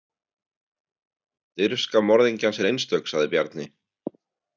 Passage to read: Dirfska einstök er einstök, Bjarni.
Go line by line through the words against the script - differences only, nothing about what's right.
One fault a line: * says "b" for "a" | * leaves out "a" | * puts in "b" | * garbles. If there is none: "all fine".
* says "morðingjans" for "einstök"
* puts in "sagði"